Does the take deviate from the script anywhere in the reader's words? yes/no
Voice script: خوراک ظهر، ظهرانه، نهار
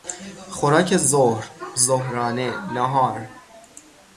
no